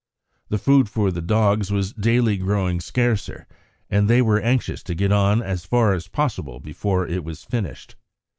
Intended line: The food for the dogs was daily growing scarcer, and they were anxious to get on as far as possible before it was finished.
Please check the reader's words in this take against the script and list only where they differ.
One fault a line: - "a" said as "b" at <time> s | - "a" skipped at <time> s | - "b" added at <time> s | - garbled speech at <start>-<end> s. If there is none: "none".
none